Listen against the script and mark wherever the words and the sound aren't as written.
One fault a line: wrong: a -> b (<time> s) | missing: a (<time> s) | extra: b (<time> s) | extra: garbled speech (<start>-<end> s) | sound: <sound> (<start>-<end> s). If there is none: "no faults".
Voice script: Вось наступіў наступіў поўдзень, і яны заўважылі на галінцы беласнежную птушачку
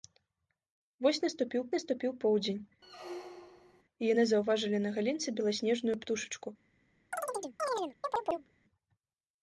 sound: squeak (2.8-3.8 s)
sound: chirp (7.1-8.5 s)